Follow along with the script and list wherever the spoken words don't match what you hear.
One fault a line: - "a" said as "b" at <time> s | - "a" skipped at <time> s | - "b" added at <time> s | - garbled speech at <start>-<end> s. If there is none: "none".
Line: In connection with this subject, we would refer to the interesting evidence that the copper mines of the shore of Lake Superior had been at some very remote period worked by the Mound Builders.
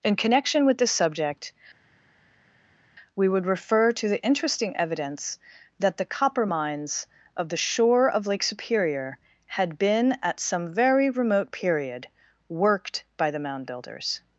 none